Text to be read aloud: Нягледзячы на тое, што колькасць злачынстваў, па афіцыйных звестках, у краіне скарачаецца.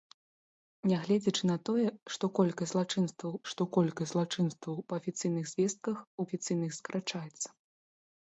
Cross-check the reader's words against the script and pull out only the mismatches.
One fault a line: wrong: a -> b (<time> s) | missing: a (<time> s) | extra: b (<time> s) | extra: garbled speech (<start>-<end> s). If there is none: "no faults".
extra: што колькасць злачынстваў (3.5 s)
wrong: краіне -> афіцыйных (6.3 s)